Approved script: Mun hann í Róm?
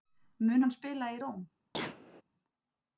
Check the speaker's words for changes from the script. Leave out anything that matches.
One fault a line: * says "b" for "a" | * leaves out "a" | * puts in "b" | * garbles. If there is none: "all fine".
* puts in "spila"